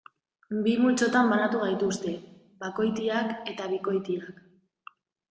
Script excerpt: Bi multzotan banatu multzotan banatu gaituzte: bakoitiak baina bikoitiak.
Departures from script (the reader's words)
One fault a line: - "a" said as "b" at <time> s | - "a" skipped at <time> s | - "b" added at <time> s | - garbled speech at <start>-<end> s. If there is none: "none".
- "multzotan banatu" skipped at 1.6 s
- "baina" said as "eta" at 3.5 s